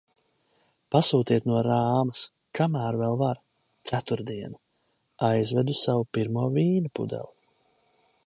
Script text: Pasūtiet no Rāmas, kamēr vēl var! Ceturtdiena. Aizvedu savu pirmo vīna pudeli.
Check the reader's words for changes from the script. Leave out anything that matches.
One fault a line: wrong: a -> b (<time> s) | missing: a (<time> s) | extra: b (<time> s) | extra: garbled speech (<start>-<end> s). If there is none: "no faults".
no faults